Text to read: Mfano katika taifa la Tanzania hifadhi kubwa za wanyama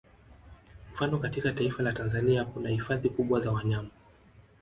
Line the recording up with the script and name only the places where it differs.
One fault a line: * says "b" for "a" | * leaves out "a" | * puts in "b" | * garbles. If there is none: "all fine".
* puts in "kuna"